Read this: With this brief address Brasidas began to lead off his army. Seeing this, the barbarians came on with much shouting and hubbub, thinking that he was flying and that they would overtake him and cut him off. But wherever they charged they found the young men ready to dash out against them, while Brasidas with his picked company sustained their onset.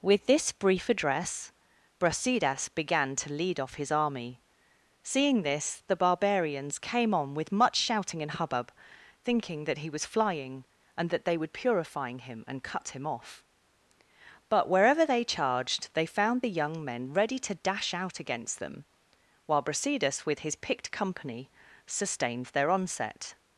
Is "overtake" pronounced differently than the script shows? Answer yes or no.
yes